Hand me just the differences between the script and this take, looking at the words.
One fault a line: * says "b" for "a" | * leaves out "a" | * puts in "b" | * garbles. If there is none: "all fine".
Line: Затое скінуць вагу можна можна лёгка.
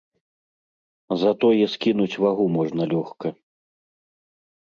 * leaves out "можна"